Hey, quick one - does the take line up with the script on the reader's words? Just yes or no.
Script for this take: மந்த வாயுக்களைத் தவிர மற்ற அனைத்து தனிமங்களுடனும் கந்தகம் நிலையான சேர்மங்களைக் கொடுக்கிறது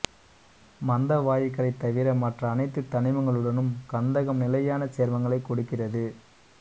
yes